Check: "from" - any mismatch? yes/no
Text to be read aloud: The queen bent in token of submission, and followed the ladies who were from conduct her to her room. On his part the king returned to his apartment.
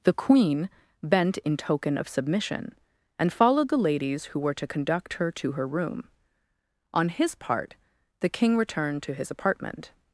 yes